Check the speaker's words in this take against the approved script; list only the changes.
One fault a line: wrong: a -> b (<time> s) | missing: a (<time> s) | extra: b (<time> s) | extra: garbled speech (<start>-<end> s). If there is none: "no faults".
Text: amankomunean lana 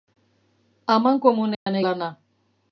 no faults